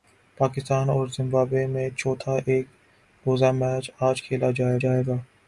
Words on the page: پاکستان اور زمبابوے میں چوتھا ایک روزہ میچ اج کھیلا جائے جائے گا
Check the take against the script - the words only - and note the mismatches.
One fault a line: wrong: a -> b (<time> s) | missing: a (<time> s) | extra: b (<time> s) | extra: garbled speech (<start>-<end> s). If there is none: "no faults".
no faults